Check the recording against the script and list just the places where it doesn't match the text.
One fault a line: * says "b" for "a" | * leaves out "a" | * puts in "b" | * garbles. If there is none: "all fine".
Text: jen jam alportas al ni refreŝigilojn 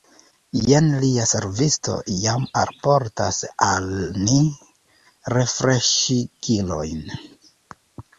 * puts in "lia servisto"